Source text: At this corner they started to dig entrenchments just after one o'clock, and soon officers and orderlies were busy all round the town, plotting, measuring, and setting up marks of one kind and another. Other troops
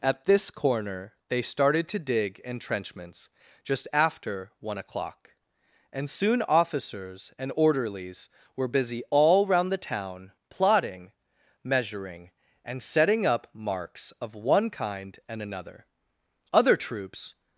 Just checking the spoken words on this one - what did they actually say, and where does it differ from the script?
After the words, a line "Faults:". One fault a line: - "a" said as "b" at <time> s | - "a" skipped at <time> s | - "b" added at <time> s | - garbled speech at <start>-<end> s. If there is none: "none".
At this corner they started to dig entrenchments just after one o'clock, and soon officers and orderlies were busy all round the town, plotting, measuring, and setting up marks of one kind and another. Other troops
Faults:
none